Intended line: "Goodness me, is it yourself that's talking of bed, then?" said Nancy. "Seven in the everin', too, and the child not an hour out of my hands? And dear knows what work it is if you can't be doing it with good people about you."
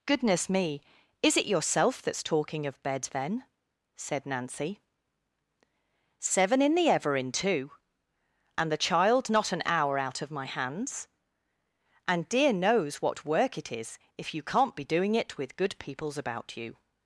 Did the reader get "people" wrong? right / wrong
wrong